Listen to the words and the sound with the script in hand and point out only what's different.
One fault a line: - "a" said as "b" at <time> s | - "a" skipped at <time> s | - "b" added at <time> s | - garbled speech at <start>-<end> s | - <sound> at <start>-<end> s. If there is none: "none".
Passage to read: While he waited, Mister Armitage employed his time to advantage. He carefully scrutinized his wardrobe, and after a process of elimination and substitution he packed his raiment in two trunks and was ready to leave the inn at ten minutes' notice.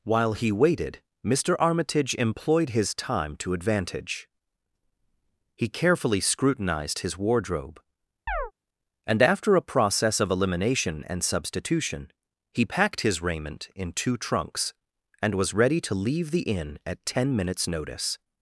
- chirp at 8.3-8.5 s